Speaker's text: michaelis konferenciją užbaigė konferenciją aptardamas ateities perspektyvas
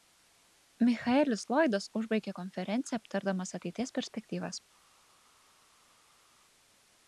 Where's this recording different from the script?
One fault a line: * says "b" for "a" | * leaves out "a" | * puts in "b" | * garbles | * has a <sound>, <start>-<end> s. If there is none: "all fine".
* says "lloydas" for "konferenciją"